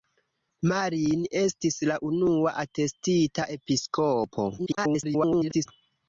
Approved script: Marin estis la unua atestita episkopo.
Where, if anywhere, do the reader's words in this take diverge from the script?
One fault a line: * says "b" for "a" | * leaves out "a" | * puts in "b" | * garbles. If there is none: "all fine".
* garbles